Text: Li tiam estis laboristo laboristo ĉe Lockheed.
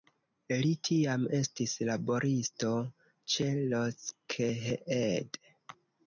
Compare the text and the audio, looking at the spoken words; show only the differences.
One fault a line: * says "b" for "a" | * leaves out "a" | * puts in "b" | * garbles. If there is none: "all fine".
* leaves out "laboristo"